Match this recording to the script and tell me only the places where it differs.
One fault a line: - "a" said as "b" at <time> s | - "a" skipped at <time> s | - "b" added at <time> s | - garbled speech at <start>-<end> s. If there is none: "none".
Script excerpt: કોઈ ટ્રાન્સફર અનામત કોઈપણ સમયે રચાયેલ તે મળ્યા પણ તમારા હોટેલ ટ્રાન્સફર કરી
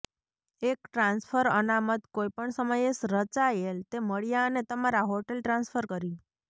- "કોઈ" said as "એક" at 0.6 s
- "પણ" said as "અને" at 4.5 s